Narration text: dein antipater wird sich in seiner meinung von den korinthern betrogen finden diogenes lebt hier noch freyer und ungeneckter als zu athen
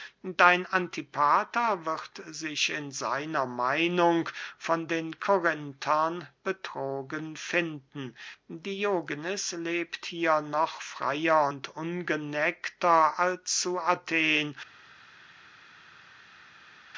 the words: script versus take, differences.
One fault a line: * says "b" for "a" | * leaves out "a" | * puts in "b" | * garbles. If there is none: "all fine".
all fine